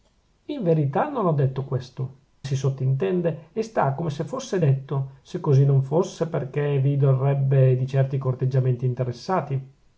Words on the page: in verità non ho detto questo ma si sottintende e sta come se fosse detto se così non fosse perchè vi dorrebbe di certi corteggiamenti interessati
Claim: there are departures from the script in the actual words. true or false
true